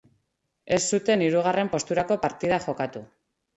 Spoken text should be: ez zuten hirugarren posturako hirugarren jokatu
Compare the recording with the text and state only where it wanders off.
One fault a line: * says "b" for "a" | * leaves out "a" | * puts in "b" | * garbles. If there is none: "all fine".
* says "partida" for "hirugarren"